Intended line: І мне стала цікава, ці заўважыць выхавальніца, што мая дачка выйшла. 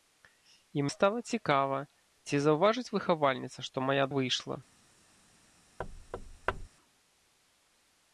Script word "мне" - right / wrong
wrong